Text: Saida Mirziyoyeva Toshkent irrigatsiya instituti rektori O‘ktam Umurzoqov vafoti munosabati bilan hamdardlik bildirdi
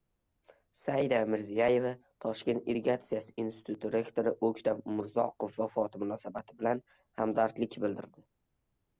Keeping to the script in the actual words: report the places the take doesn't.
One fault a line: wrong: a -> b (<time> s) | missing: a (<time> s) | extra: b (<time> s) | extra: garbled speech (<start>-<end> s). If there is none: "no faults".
no faults